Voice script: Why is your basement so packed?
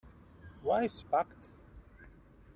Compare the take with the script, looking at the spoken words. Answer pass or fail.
fail